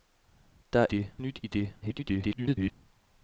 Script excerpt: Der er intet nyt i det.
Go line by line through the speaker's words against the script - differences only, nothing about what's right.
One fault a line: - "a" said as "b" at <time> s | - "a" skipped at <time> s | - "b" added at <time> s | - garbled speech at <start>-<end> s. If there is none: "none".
- "intet" said as "det" at 0.9 s
- garbled speech at 1.8-2.7 s